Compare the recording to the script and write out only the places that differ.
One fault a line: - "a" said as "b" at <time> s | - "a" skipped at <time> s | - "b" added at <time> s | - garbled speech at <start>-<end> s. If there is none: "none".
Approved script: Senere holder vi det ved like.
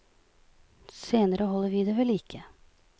none